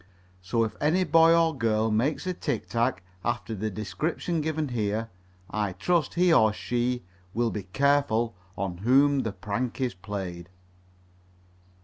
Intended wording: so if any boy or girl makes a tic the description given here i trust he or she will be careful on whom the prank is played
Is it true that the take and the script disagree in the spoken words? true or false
true